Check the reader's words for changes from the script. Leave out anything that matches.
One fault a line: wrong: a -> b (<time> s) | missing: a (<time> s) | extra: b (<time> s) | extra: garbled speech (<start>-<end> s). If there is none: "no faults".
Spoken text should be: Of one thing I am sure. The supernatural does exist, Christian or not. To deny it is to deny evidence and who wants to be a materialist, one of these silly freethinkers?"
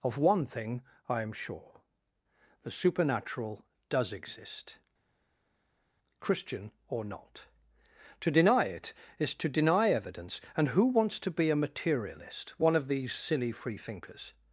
no faults